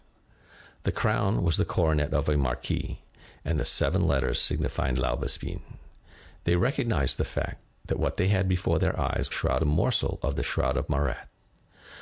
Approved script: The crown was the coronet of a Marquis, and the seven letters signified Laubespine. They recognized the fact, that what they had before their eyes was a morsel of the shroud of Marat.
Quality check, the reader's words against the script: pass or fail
fail